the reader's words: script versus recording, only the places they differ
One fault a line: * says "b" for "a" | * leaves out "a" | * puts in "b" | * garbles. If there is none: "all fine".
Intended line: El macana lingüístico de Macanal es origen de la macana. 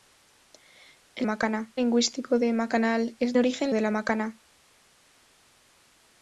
all fine